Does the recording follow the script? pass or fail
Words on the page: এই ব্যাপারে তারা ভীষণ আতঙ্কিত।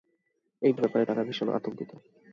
pass